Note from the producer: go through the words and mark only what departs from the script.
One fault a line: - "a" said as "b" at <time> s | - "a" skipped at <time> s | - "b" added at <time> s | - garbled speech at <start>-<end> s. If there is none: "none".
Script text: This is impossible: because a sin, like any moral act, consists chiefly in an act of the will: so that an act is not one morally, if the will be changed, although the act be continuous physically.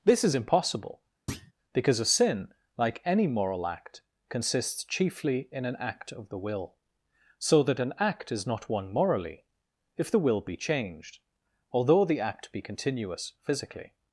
none